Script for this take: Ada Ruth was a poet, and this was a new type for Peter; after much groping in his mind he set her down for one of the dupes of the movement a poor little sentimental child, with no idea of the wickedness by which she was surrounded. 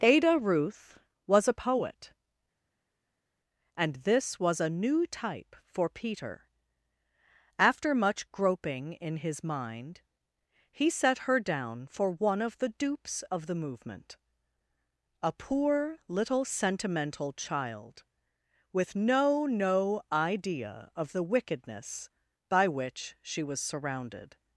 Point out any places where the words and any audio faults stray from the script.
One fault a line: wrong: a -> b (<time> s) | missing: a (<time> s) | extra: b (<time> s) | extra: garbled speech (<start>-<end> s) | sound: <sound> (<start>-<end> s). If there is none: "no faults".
extra: no (19.5 s)